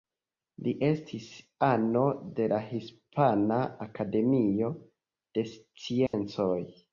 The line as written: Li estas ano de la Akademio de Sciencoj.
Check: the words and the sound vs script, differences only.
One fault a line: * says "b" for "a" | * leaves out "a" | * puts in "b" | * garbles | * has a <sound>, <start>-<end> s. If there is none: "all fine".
* says "estis" for "estas"
* puts in "Hispana"
* has a dropout, 6.1-6.1 s